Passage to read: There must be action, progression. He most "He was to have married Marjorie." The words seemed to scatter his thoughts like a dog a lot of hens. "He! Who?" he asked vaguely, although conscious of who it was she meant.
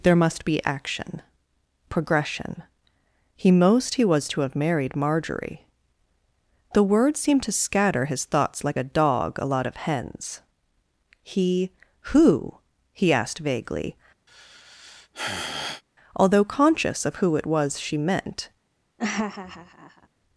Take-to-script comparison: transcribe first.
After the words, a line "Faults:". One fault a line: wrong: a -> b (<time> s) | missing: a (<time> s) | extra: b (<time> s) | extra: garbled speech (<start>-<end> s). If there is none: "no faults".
There must be action, progression. He most "He was to have married Marjorie." The words seemed to scatter his thoughts like a dog a lot of hens. "He! Who?" he asked vaguely, although conscious of who it was she meant.
Faults:
no faults